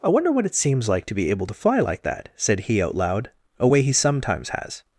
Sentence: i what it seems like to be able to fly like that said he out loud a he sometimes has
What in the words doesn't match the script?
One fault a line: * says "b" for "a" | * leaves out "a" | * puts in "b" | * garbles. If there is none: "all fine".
* puts in "wonder"
* puts in "way"